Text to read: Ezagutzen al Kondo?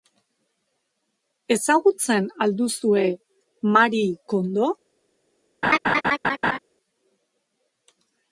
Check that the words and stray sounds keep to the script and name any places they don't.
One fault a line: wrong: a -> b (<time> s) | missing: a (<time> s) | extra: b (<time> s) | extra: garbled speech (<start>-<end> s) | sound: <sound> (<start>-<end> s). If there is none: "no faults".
extra: duzue Marie (2.6 s)
sound: laugh (5.6-6.6 s)